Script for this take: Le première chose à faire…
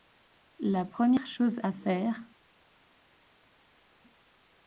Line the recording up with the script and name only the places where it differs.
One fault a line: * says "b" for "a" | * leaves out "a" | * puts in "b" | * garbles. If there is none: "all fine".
* says "La" for "Le"